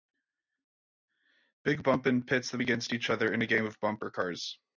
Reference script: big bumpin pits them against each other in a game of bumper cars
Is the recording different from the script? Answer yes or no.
no